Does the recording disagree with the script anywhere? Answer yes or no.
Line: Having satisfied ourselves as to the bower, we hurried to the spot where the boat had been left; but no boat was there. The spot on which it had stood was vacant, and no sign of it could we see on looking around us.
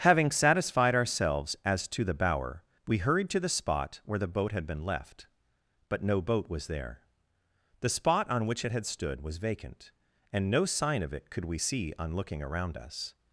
no